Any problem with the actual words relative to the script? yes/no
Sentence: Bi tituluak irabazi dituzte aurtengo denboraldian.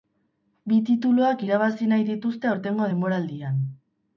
yes